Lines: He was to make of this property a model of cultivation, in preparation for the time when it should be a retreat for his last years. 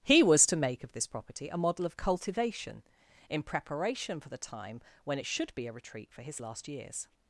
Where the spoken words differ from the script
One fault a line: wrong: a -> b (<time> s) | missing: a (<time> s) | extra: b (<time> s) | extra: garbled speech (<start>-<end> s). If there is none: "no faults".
no faults